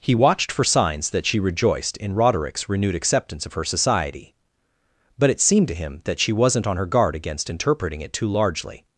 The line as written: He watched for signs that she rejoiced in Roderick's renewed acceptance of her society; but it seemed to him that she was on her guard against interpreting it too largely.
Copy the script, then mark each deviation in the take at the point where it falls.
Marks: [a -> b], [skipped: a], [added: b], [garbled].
He watched for signs that she rejoiced in Roderick's renewed acceptance of her society; but it seemed to him that she [was -> wasn't] on her guard against interpreting it too largely.